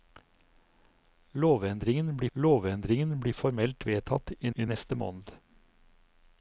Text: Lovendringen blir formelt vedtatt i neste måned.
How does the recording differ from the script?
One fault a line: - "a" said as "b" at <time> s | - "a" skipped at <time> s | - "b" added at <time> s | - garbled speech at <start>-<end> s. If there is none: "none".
- "lovendringen blir" added at 2.3 s
- "i" added at 4.5 s